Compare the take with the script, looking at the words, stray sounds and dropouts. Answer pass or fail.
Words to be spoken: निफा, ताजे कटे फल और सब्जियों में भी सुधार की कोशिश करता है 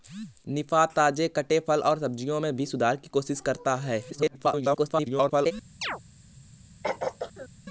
fail